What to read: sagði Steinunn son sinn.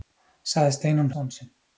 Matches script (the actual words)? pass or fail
pass